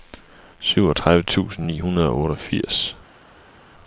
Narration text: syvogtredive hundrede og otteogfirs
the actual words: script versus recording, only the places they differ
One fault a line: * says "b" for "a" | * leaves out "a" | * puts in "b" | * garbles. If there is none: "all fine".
* puts in "tusind ni"